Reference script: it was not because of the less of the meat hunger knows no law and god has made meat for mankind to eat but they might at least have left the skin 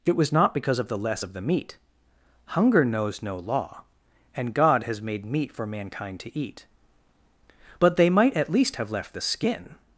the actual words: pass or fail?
pass